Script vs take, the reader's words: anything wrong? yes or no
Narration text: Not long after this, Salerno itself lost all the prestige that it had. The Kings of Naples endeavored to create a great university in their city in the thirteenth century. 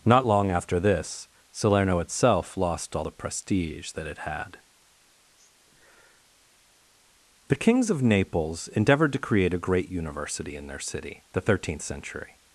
yes